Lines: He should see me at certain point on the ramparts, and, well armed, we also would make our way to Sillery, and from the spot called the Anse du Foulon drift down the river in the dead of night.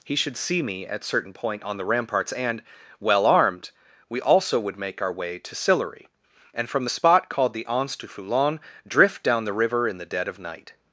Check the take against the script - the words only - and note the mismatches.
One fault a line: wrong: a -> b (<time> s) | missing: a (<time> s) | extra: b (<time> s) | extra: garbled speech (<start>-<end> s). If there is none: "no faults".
no faults